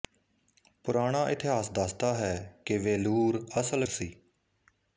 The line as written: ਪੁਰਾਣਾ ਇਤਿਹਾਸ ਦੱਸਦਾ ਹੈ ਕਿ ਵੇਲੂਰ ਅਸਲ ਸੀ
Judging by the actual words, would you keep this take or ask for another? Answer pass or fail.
pass